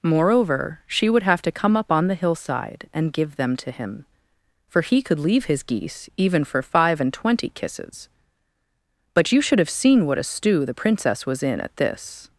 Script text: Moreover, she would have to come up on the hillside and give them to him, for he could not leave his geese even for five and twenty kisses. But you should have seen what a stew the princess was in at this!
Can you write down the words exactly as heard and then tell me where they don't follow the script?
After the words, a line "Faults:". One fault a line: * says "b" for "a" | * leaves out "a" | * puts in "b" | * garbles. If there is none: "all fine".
Moreover, she would have to come up on the hillside and give them to him, for he could leave his geese even for five and twenty kisses. But you should have seen what a stew the princess was in at this!
Faults:
* leaves out "not"